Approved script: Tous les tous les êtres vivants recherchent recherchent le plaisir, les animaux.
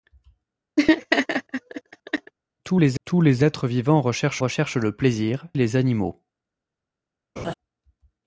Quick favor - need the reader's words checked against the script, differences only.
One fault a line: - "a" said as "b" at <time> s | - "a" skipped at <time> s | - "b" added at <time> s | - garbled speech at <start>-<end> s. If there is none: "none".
none